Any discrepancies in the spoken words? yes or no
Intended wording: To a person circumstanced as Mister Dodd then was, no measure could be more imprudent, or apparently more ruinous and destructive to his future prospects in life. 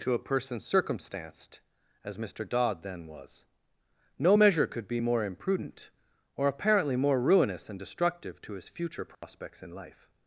no